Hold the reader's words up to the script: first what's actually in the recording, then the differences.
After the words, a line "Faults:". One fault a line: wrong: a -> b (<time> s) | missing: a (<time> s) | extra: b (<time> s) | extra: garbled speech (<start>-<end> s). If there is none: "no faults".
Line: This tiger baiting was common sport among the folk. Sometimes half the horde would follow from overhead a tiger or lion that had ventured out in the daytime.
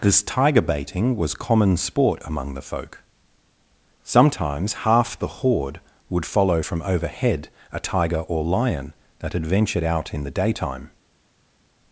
This tiger baiting was common sport among the folk. Sometimes half the horde would follow from overhead a tiger or lion that had ventured out in the daytime.
Faults:
no faults